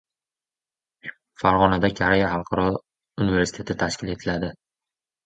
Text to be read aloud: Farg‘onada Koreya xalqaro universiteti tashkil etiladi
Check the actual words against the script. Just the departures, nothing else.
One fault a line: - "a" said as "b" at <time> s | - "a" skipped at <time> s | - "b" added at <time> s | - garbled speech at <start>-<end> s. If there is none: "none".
none